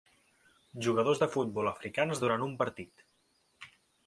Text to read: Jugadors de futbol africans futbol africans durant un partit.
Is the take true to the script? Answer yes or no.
no